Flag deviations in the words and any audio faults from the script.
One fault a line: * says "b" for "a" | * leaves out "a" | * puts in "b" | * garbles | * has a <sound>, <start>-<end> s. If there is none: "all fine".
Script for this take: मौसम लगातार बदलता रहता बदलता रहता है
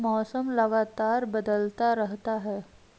* leaves out "बदलता रहता"